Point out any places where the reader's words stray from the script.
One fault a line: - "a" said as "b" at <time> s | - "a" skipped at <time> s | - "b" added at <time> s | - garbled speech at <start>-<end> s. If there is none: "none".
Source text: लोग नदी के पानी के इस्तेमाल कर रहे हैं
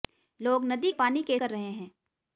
- "के" skipped at 0.9 s
- "इस्तेमाल" skipped at 1.4 s